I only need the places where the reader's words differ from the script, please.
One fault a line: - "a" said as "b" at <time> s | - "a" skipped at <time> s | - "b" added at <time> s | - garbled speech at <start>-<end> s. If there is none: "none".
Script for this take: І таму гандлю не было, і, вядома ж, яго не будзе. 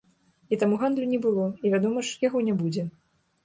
none